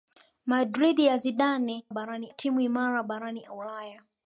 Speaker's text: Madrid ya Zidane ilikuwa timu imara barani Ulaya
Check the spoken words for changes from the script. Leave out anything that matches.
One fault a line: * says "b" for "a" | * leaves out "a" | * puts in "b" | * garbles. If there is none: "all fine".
* says "barani" for "ilikuwa"